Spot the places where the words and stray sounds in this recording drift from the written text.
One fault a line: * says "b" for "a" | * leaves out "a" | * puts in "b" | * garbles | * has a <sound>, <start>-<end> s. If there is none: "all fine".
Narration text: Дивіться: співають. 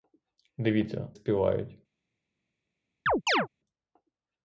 * has a chirp, 3.1-3.5 s